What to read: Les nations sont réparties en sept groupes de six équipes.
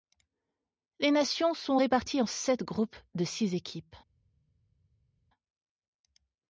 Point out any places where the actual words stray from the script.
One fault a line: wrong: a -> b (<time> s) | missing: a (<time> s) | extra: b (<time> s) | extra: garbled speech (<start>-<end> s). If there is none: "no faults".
no faults